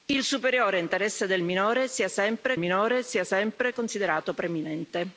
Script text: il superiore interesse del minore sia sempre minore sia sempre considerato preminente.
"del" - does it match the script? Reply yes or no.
yes